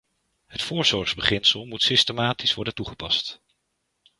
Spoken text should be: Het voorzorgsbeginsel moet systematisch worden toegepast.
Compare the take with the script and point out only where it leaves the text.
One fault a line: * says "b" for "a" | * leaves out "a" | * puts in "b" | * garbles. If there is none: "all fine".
all fine